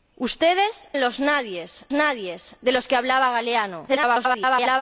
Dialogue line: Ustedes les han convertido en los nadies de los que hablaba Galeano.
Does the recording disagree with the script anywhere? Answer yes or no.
yes